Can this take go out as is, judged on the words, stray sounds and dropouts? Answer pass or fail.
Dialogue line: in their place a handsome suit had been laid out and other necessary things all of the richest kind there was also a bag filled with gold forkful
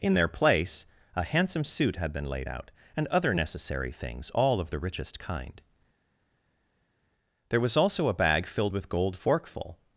pass